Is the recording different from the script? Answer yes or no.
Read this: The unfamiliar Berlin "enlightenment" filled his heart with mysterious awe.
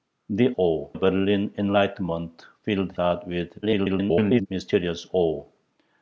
yes